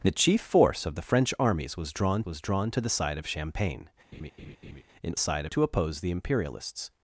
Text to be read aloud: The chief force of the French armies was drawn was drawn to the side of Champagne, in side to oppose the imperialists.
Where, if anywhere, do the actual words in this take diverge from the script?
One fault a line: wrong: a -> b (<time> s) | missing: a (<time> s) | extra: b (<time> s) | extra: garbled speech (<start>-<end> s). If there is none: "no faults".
no faults